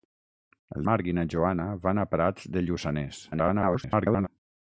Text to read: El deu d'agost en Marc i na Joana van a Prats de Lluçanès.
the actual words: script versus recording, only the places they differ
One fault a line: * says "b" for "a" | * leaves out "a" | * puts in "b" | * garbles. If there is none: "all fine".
* leaves out "deu d'agost en"
* garbles